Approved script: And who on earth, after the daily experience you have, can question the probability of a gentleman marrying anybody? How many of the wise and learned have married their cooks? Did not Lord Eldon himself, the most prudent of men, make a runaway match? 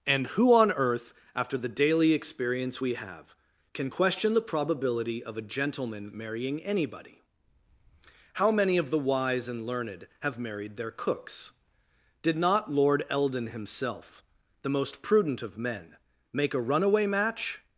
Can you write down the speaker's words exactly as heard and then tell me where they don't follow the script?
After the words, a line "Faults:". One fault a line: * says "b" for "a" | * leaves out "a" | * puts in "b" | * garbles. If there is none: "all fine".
And who on earth, after the daily experience we have, can question the probability of a gentleman marrying anybody? How many of the wise and learned have married their cooks? Did not Lord Eldon himself, the most prudent of men, make a runaway match?
Faults:
* says "we" for "you"